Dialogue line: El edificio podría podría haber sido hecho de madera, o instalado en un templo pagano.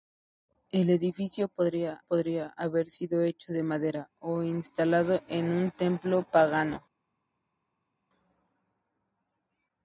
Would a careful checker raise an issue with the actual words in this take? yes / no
no